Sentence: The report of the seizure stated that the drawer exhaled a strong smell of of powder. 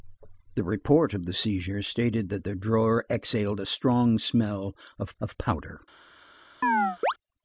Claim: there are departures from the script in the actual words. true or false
false